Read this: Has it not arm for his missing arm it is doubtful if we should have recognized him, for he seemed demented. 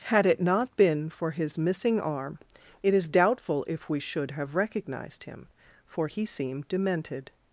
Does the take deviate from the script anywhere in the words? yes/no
yes